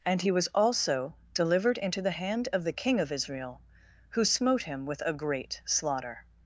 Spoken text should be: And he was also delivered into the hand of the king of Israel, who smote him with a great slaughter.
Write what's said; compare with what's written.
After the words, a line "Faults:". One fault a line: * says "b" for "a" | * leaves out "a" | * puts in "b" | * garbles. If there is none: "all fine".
And he was also delivered into the hand of the king of Israel, who smote him with a great slaughter.
Faults:
all fine